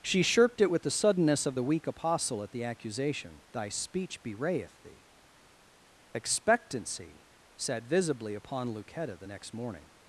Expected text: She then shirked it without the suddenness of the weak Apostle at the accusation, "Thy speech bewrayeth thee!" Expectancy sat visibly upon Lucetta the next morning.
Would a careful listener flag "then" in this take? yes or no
yes